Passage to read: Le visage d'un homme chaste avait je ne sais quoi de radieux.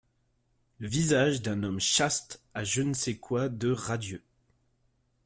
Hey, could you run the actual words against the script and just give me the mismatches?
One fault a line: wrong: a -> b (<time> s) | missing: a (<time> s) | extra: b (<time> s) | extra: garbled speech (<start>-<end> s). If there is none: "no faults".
wrong: avait -> a (2.5 s)